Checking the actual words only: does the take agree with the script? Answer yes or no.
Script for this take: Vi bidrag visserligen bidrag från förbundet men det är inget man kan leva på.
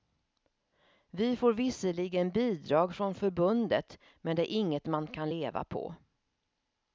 no